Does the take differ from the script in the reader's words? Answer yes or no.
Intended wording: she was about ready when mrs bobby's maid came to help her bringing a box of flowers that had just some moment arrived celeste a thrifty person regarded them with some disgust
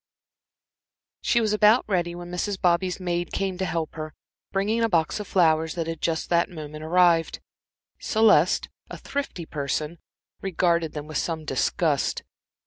yes